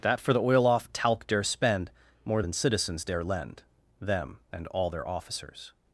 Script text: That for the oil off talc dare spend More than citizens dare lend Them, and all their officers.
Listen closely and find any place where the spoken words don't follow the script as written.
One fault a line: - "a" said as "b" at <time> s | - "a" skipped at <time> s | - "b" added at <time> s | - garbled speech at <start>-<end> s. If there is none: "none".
none